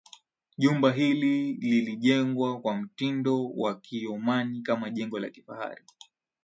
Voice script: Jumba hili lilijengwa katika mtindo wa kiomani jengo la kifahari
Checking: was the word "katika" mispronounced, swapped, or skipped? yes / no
yes